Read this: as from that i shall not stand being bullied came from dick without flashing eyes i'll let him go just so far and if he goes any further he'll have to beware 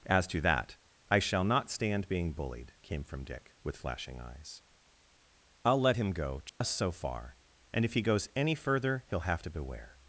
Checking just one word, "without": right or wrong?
wrong